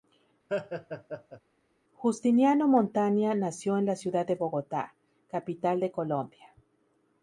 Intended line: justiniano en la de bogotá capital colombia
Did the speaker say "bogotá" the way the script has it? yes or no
yes